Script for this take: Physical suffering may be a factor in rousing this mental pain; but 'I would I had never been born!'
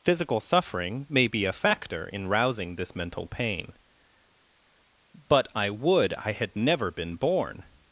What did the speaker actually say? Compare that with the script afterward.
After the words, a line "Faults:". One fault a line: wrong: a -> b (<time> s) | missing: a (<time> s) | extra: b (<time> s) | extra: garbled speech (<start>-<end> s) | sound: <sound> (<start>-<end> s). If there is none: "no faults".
Physical suffering may be a factor in rousing this mental pain; but 'I would I had never been born!'
Faults:
no faults